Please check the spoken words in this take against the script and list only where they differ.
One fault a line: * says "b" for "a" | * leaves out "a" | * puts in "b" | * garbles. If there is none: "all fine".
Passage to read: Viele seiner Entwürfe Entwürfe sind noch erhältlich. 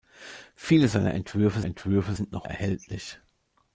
all fine